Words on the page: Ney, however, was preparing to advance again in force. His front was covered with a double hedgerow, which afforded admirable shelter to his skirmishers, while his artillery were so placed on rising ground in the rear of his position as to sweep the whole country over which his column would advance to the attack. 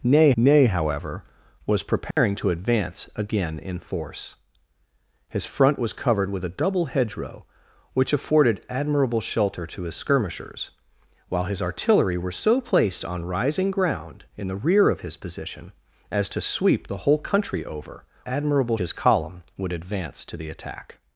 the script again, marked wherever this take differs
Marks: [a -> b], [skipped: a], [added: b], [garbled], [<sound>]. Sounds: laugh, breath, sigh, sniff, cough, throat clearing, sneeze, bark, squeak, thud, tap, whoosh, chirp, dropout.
Ney, [added: ney] however, was preparing [dropout] to advance again in force. His front was covered with a double hedgerow, which afforded admirable shelter to his skirmishers, while his artillery were so placed on rising ground in the rear of his position as to sweep the whole country over [which -> admirable] his column would advance to the attack.